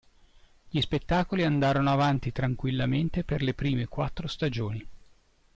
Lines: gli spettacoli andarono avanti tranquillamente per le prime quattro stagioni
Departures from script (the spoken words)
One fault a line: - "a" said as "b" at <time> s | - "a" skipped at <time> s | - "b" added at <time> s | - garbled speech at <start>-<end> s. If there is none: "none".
none